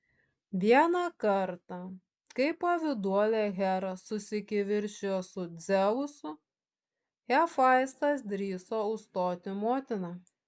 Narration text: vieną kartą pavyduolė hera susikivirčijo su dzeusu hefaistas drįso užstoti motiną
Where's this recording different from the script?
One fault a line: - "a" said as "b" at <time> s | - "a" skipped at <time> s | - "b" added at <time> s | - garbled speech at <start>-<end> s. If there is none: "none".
- "kai" added at 2.4 s